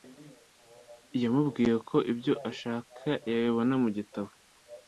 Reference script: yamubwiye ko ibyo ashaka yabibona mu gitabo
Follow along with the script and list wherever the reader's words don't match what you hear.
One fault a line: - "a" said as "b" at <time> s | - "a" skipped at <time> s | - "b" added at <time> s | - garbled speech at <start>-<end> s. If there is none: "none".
none